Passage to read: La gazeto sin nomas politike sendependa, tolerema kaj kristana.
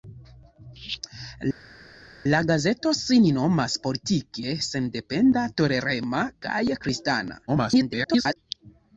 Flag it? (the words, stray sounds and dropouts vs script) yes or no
yes